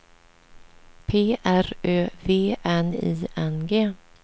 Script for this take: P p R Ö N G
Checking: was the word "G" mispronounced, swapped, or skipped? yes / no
no